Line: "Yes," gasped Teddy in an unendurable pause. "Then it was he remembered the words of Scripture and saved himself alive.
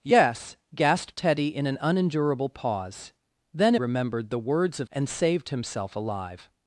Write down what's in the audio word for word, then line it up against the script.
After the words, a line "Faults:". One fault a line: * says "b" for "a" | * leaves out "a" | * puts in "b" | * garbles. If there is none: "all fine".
"Yes," gasped Teddy in an unendurable pause. "Then remembered the words of And saved himself alive.
Faults:
* leaves out "it was he"
* leaves out "Scripture"